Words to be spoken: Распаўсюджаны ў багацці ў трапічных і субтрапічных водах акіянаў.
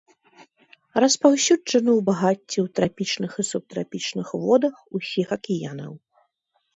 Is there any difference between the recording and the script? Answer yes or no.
yes